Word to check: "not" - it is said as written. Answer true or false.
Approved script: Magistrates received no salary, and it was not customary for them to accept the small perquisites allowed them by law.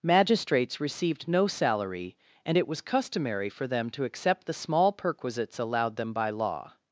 false